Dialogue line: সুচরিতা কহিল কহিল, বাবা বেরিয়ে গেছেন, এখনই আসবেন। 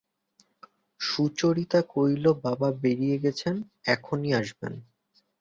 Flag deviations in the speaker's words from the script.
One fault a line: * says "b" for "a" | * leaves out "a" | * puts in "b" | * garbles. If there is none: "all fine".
* leaves out "কহিল"